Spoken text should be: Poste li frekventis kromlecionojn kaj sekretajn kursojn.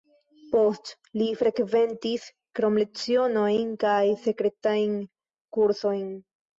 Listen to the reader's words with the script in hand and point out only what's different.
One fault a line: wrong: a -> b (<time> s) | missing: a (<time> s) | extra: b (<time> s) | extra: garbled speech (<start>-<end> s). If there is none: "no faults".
no faults